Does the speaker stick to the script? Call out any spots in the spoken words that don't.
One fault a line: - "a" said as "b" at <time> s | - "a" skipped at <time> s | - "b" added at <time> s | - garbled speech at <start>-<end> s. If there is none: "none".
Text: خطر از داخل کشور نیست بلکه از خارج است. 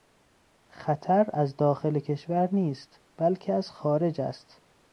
none